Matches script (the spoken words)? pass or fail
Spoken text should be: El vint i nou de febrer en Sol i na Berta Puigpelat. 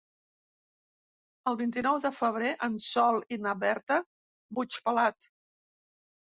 pass